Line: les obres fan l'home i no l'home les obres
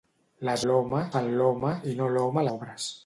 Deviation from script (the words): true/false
true